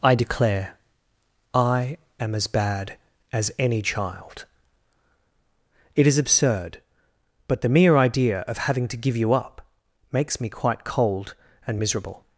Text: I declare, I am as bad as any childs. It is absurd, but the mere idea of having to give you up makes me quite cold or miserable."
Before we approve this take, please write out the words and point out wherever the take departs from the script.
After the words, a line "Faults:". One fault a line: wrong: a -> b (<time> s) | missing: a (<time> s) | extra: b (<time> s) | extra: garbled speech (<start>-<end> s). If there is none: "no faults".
I declare, I am as bad as any child. It is absurd, but the mere idea of having to give you up makes me quite cold and miserable."
Faults:
wrong: childs -> child (3.8 s)
wrong: or -> and (11.7 s)